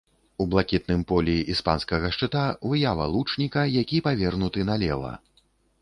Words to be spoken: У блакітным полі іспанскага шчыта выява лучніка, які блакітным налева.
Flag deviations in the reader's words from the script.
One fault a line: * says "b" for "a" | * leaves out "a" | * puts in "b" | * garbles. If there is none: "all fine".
* says "павернуты" for "блакітным"